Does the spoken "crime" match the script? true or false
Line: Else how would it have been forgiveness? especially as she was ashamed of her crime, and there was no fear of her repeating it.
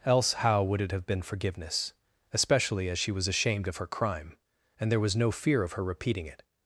true